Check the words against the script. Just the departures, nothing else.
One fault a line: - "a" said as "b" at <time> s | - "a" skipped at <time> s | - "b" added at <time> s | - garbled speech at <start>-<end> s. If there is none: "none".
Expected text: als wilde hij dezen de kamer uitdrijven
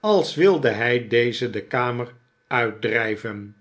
none